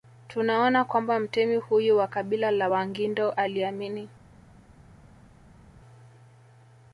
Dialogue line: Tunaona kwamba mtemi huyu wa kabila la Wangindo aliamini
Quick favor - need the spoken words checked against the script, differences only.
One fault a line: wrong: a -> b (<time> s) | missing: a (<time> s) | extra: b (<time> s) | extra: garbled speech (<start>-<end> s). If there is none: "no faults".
no faults